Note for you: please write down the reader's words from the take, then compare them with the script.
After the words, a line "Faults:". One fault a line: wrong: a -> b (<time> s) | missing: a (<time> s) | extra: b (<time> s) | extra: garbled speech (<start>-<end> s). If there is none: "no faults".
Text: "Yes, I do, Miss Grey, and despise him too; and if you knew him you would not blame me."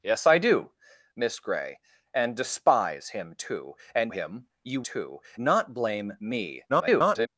"Yes, I do, Miss Grey, and despise him too; and him you too not blame me." [garbled]
Faults:
missing: if you knew (4.1 s)
wrong: would -> too (4.8 s)
extra: garbled speech (6.7-7.3 s)